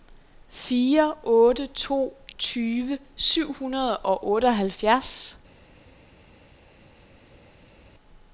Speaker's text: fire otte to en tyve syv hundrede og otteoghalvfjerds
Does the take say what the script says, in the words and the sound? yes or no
no